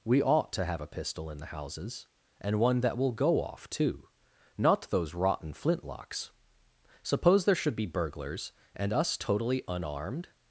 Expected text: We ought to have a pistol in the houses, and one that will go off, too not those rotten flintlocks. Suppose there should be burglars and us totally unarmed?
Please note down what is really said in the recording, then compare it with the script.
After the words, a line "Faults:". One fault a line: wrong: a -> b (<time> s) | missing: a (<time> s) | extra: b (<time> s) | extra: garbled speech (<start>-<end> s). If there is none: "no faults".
We ought to have a pistol in the houses, and one that will go off, too not those rotten flintlocks. Suppose there should be burglars and us totally unarmed?
Faults:
no faults